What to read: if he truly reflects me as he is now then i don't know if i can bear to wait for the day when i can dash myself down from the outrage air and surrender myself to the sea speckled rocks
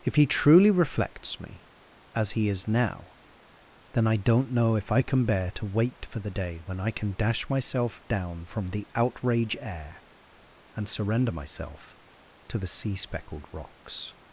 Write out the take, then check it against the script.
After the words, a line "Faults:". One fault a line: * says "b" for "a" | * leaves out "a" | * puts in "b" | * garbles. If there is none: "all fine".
if he truly reflects me as he is now then i don't know if i can bear to wait for the day when i can dash myself down from the outrage air and surrender myself to the sea speckled rocks
Faults:
all fine